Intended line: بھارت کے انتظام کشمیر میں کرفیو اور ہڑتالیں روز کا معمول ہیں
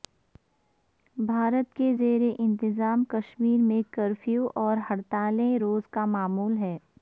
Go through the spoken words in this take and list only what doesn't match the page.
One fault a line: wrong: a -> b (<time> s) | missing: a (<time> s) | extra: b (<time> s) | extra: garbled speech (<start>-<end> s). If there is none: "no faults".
extra: زیر (2.0 s)